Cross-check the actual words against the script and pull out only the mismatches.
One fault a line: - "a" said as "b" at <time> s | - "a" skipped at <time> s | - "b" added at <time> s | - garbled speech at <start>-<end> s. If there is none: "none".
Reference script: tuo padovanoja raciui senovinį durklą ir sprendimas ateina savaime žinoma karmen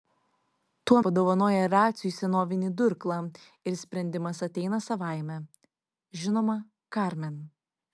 none